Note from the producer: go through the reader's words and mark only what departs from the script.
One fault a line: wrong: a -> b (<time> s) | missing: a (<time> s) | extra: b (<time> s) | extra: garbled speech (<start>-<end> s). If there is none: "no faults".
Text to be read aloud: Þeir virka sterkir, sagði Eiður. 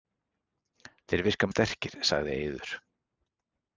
no faults